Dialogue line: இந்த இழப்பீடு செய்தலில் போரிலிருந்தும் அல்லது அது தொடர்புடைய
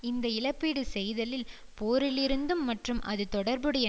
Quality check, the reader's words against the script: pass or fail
fail